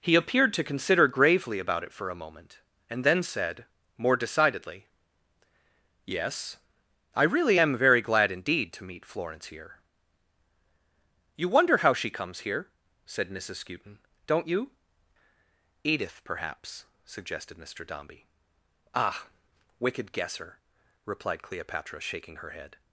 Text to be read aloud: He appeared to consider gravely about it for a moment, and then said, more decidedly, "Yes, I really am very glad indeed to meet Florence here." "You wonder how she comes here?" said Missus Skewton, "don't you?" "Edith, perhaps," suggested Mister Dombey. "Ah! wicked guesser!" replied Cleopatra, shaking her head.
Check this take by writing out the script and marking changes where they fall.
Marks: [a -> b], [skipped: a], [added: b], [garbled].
He appeared to consider gravely about it for a moment, and then said, more decidedly, "Yes, I really am very glad indeed to meet Florence here." "You wonder how she comes here?" said Missus Skewton, "don't you?" "Edith, perhaps," suggested Mister Dombey. "Ah! wicked guesser!" replied Cleopatra, shaking her head.